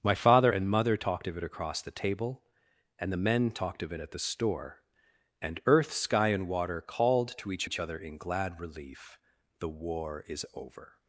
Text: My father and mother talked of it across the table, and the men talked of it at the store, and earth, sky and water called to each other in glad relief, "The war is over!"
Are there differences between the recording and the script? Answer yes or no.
yes